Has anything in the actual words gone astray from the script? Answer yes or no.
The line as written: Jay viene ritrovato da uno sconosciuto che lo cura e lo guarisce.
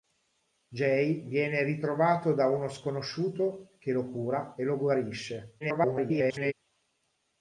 yes